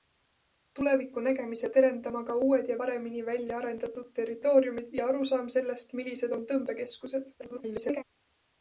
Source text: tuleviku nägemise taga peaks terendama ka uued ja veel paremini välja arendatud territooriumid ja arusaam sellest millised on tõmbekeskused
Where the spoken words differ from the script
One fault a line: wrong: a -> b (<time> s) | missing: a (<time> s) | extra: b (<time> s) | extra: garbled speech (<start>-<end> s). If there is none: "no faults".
missing: taga peaks (1.7 s)
missing: veel (2.8 s)
extra: garbled speech (7.4-8.0 s)